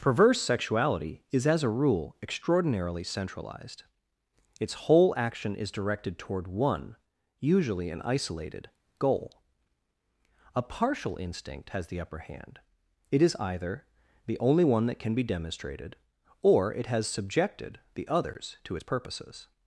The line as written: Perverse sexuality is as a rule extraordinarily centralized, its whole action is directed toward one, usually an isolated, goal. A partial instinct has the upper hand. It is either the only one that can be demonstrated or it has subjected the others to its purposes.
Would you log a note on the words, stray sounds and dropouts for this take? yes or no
no